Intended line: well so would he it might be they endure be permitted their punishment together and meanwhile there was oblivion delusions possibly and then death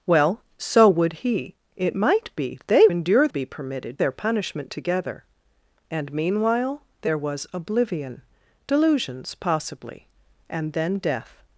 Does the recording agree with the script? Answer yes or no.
yes